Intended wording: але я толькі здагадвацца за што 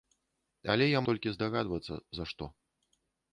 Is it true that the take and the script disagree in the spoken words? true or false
false